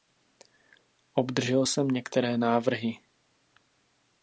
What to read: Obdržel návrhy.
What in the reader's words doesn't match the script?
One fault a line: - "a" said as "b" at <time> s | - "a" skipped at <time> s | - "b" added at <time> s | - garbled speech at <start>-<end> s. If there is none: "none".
- "jsem některé" added at 1.7 s